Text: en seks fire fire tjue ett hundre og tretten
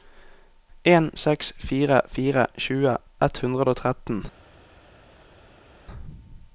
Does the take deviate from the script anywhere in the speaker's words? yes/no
no